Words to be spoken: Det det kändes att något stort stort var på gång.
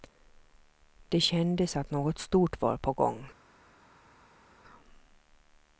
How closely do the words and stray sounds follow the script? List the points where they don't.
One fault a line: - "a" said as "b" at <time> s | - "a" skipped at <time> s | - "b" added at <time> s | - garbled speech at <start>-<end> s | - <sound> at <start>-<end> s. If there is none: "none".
- "det" skipped at 1.2 s
- "stort" skipped at 2.6 s